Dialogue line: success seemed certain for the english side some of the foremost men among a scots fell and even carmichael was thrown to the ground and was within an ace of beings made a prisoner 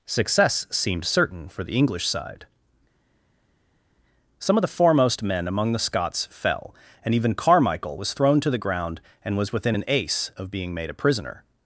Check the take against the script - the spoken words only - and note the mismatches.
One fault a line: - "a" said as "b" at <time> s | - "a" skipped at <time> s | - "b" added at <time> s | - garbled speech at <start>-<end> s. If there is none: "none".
- "a" said as "the" at 5.7 s
- "beings" said as "being" at 10.5 s